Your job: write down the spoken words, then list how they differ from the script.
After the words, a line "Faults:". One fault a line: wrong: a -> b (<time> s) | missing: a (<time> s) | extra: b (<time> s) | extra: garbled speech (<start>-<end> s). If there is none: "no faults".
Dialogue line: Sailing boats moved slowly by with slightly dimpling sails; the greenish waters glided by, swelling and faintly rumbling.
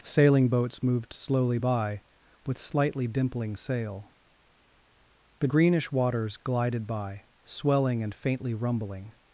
Sailing boats moved slowly by with slightly dimpling sail; the greenish waters glided by, swelling and faintly rumbling.
Faults:
wrong: sails -> sail (3.6 s)